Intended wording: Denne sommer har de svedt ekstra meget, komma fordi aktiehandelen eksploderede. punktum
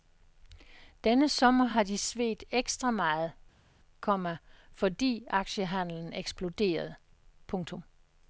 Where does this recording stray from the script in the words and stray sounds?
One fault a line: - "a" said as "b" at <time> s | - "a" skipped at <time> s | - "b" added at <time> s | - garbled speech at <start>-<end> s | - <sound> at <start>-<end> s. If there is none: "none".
none